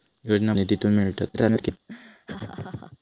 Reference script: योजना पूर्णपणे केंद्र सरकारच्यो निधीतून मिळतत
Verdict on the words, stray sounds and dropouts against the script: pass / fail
fail